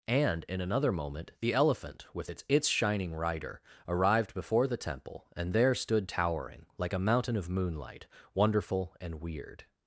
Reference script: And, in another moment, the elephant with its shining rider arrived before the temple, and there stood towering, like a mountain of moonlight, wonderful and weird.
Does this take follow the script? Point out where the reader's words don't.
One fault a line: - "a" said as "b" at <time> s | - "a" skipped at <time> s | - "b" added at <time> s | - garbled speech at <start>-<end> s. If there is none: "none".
- "its" added at 2.5 s